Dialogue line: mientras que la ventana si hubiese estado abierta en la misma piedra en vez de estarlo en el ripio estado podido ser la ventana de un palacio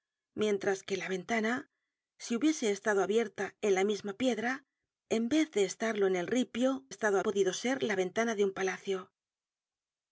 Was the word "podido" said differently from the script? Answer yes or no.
no